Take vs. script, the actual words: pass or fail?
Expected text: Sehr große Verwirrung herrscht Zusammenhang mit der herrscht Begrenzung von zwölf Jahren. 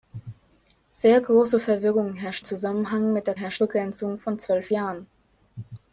pass